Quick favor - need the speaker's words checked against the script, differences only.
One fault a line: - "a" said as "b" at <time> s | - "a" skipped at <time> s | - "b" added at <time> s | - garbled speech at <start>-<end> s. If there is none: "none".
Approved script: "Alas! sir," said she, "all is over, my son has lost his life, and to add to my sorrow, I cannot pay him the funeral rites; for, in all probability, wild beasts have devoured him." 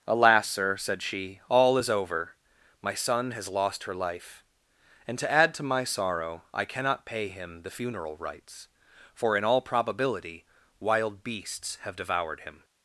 - "his" said as "her" at 3.8 s